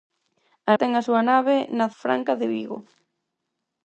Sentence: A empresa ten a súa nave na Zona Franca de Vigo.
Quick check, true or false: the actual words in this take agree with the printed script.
false